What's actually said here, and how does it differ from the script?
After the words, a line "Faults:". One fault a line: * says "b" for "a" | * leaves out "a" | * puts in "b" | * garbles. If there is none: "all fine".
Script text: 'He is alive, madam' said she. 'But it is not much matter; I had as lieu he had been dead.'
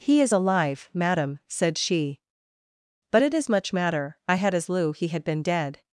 'He is alive, madam' said she. 'But it is much matter; I had as lieu he had been dead.'
Faults:
* leaves out "not"